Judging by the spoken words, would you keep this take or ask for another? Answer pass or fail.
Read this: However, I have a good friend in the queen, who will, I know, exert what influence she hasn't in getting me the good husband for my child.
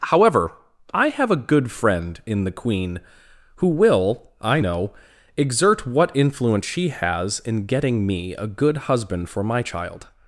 fail